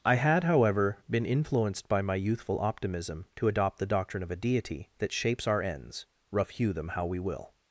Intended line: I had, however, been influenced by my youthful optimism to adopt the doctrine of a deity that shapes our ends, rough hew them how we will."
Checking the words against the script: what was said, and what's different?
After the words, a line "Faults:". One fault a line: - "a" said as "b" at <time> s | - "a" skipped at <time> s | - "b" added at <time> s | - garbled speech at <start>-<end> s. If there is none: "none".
I had, however, been influenced by my youthful optimism to adopt the doctrine of a deity that shapes our ends, rough hew them how we will."
Faults:
none